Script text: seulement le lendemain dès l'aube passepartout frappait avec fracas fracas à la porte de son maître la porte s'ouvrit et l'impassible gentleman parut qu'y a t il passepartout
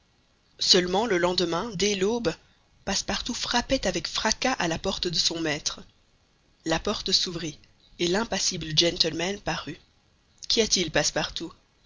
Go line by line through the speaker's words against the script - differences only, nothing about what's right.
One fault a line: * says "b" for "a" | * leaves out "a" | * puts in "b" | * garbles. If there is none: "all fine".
* leaves out "fracas"